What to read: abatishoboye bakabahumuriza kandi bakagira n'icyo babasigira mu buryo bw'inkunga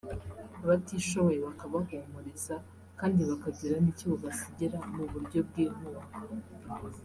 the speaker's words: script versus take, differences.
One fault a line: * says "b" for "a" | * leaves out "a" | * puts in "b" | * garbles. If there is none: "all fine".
all fine